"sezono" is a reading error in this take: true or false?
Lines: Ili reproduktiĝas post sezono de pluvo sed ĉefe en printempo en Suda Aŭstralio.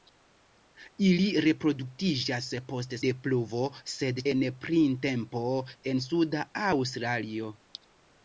true